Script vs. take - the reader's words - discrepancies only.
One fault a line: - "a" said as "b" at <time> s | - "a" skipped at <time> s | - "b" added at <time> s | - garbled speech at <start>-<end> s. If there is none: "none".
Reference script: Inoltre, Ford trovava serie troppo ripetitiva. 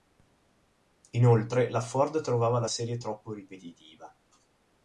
- "la" added at 1.7 s
- "la" added at 2.6 s